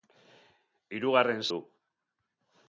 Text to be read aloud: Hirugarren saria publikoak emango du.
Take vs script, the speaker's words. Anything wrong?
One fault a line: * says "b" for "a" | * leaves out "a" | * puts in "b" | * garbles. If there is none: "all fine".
* leaves out "saria publikoak emango"